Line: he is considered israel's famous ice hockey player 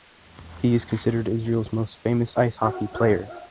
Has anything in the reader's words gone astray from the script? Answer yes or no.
yes